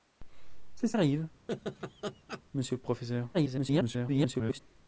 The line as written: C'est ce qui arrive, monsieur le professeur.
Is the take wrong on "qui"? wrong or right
wrong